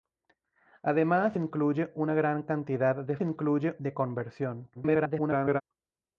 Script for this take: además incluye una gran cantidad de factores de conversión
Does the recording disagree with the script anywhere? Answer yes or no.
yes